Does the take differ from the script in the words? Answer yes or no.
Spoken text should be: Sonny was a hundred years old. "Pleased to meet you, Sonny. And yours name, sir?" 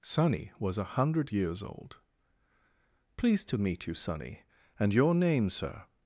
yes